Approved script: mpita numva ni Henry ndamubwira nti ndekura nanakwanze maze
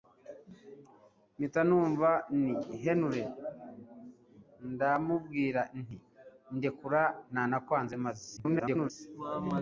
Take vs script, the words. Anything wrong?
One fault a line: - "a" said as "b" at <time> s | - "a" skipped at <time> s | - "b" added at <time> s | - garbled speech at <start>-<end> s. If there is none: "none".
- garbled speech at 8.4-8.9 s